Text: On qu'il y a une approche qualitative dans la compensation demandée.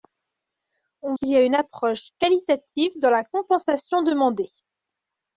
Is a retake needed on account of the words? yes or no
no